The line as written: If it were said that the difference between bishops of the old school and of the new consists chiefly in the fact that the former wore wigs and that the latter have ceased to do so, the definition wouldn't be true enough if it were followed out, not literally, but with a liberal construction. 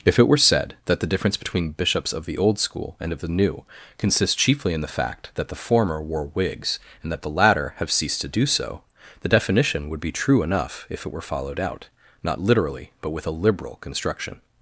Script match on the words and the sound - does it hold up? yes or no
no